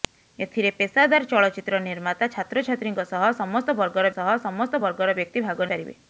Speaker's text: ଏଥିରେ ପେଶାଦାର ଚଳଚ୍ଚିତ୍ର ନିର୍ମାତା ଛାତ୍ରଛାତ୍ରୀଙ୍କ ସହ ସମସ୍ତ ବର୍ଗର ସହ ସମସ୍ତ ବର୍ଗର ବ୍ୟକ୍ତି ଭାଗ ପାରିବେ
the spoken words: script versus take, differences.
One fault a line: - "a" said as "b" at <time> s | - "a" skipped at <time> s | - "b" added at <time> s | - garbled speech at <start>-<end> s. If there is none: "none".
none